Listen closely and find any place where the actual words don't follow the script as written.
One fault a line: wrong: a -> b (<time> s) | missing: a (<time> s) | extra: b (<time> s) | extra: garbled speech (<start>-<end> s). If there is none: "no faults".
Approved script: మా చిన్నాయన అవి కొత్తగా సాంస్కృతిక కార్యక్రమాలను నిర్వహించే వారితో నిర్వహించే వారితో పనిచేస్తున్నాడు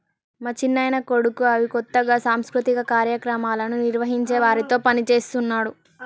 extra: కొడుకు (1.1 s)
missing: నిర్వహించే వారితో (4.8 s)